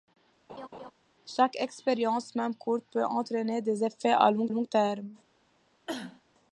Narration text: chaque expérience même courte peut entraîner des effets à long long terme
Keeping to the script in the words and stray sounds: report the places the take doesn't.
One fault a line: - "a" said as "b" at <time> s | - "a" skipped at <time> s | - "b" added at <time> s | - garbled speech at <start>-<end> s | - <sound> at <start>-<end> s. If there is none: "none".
- laugh at 0.5-0.9 s
- cough at 5.9-6.2 s